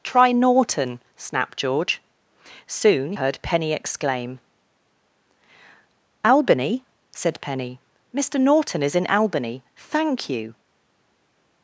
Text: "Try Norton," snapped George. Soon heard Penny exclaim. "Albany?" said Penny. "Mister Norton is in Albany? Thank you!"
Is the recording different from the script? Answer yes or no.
no